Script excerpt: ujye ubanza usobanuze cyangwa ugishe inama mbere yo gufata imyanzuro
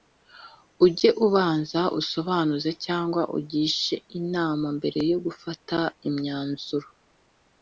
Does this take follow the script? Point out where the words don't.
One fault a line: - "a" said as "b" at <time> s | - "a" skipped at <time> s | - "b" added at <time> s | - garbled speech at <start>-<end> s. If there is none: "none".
none